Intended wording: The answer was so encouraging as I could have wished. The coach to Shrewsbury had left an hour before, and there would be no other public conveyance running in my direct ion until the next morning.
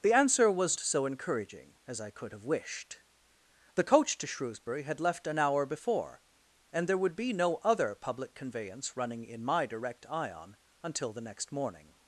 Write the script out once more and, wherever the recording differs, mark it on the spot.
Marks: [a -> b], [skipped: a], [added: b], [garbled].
The answer was so encouraging as I could have wished. The coach to Shrewsbury had left an hour before, and there would be no other public conveyance running in my direct ion until the next morning.